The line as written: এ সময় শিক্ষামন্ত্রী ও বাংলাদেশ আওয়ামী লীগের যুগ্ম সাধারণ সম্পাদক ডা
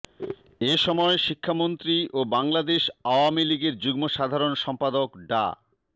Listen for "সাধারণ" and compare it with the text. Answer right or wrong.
right